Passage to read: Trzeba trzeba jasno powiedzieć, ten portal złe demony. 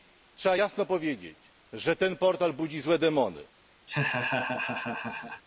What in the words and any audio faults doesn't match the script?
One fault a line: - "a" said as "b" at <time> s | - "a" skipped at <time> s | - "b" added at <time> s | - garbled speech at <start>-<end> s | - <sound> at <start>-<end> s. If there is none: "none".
- "trzeba" skipped at 0.6 s
- "że" added at 1.7 s
- "budzi" added at 2.5 s
- laugh at 3.9-5.4 s